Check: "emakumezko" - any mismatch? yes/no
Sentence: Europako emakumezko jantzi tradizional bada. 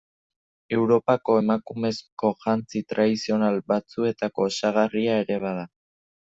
no